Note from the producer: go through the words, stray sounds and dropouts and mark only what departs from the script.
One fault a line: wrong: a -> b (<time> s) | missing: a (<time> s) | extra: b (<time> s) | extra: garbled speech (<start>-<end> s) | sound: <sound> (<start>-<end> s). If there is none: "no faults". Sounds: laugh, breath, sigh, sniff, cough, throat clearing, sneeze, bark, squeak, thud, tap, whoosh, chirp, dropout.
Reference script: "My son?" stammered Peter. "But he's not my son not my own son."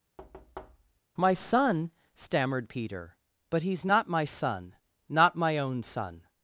sound: thud (0.2-1.0 s)